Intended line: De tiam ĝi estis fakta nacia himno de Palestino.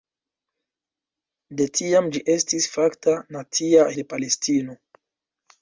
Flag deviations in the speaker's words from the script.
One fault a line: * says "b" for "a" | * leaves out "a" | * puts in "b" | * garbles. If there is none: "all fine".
* leaves out "himno"